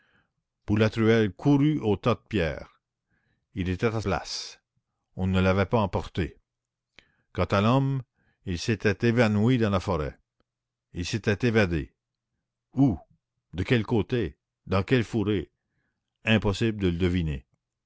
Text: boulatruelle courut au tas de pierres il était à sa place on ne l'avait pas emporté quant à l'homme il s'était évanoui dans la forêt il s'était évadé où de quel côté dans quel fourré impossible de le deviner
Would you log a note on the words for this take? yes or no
yes